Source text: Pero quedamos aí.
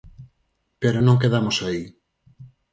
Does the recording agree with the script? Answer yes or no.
no